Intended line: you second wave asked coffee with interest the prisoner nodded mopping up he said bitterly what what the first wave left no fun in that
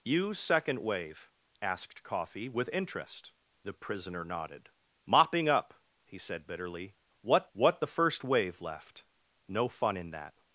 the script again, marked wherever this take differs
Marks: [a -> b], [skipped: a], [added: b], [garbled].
you second wave asked coffee with interest the prisoner nodded mopping up he said bitterly what what the first wave left no fun in that